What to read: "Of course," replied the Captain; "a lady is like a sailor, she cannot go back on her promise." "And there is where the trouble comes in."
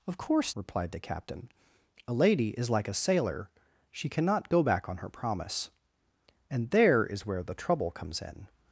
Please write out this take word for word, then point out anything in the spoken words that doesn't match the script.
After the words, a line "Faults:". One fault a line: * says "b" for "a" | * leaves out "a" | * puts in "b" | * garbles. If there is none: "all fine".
"Of course," replied the Captain; "a lady is like a sailor, she cannot go back on her promise." "And there is where the trouble comes in."
Faults:
all fine